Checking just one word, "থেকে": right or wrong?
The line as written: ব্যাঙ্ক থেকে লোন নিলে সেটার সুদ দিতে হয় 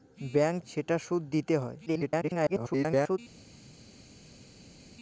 wrong